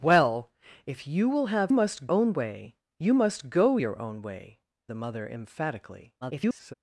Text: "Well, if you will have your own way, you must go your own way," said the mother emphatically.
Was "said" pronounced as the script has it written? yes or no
no